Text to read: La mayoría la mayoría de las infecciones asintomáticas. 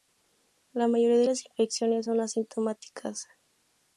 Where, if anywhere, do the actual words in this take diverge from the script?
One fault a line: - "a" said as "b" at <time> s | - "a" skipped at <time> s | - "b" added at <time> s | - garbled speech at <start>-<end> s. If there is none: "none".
- "la mayoría" skipped at 1.2 s
- "son" added at 2.0 s